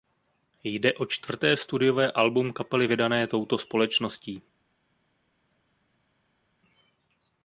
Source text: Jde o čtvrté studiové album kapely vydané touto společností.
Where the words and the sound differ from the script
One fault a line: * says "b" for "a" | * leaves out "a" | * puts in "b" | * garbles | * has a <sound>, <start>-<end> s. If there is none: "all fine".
all fine